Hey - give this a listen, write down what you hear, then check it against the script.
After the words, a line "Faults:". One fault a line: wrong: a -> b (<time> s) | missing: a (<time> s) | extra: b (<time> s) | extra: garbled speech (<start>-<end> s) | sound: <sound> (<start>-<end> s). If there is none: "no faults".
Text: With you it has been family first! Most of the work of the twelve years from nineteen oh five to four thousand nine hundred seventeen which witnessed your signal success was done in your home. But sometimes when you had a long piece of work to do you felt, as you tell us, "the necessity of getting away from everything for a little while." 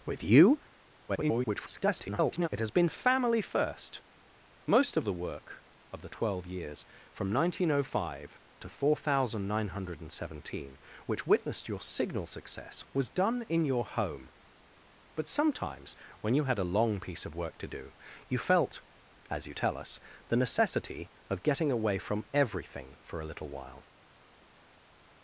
With you [garbled] it has been family first! Most of the work of the twelve years from nineteen oh five to four thousand nine hundred seventeen which witnessed your signal success was done in your home. But sometimes when you had a long piece of work to do you felt, as you tell us, "the necessity of getting away from everything for a little while."
Faults:
extra: garbled speech (1.1-2.5 s)